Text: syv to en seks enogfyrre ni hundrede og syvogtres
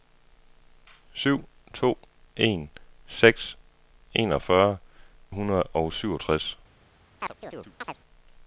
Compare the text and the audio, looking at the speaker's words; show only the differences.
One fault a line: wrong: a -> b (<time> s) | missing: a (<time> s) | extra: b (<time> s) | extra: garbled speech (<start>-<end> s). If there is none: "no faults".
missing: ni (4.8 s)